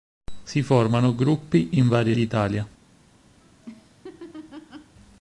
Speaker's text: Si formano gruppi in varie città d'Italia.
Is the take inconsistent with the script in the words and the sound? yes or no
yes